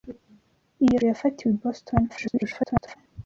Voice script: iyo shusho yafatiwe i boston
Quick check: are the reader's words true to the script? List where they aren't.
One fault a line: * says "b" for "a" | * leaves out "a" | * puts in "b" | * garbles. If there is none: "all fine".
* leaves out "shusho"
* garbles